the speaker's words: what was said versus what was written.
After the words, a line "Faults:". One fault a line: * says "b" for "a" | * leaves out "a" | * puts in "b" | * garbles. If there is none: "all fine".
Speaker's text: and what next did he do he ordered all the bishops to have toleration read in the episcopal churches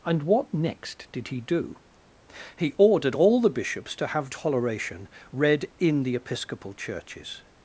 and what next did he do he ordered all the bishops to have toleration read in the episcopal churches
Faults:
all fine